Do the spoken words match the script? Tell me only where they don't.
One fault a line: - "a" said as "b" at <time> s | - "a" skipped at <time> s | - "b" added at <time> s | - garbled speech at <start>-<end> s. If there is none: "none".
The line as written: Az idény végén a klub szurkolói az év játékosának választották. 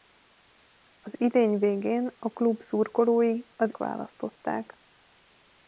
- "év játékosának" skipped at 3.8 s